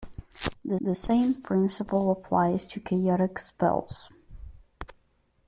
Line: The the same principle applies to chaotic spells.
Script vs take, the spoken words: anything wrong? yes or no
no